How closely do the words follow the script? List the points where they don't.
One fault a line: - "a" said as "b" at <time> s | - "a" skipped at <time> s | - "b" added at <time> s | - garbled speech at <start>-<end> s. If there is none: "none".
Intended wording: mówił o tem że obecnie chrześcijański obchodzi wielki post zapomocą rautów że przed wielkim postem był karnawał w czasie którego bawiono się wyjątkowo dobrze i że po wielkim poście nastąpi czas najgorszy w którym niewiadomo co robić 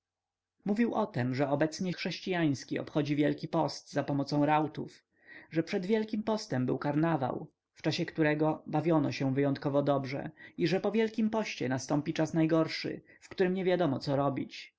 none